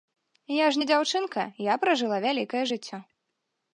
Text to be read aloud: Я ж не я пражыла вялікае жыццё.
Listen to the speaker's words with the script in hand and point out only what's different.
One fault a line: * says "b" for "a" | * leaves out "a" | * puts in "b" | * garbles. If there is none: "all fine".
* puts in "дзяўчынка"